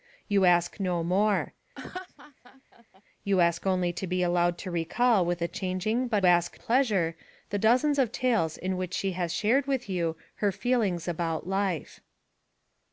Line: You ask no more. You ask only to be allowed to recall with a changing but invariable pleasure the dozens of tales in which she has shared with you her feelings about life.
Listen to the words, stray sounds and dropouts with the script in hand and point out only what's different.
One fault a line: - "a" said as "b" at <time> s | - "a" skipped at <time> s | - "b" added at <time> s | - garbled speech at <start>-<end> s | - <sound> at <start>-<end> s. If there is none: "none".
- laugh at 1.8-3.0 s
- "invariable" said as "ask" at 6.3 s